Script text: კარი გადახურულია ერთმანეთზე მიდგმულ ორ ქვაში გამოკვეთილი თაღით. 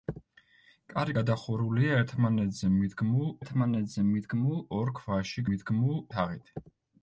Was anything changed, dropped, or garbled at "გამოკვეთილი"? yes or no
yes